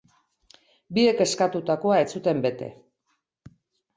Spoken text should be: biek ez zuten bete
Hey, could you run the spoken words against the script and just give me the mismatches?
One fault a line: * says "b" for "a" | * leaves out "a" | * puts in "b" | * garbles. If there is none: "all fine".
* puts in "eskatutakoa"